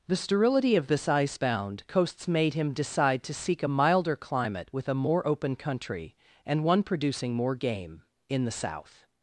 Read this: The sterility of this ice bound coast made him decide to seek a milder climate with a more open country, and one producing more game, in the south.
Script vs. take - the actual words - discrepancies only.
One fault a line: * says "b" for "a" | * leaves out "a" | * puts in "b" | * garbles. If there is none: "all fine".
* says "coasts" for "coast"